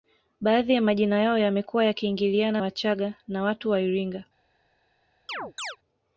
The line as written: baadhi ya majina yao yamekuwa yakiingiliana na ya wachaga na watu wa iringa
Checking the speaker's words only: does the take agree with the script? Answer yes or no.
no